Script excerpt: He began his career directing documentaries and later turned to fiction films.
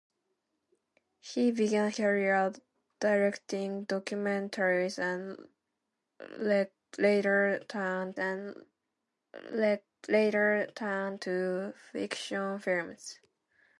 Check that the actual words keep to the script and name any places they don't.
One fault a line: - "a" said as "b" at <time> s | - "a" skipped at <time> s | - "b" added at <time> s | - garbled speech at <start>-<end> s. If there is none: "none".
- "his" skipped at 1.9 s
- "and later turned" added at 8.2 s